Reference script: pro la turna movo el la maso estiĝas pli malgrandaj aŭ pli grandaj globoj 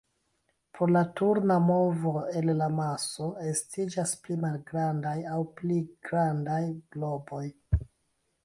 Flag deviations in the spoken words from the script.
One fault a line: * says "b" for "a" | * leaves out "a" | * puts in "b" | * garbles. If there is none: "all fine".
all fine